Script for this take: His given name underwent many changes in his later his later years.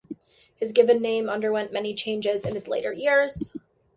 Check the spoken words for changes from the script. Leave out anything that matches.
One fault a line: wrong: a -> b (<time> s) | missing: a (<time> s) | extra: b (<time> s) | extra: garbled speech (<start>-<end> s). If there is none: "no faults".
missing: his later (2.9 s)